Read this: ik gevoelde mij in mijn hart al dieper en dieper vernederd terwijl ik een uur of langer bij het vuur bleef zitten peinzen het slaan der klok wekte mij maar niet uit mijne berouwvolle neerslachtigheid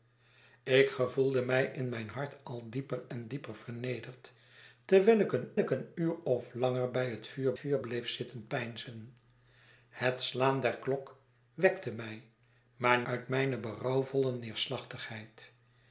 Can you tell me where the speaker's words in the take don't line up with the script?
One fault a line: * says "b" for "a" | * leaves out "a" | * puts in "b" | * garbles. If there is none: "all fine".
* puts in "ik een"
* puts in "vuur"
* leaves out "niet"